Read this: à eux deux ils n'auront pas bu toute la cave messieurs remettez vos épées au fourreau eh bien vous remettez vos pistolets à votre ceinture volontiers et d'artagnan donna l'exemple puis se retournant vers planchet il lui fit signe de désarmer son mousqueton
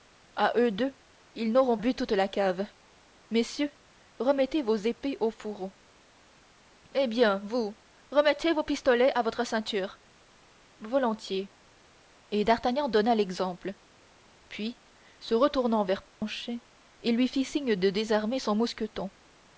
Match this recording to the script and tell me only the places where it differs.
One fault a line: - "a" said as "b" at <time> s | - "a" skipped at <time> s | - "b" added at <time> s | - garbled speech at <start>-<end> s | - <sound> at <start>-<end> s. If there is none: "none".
- "pas" skipped at 1.8 s
- dropout at 16.1-16.2 s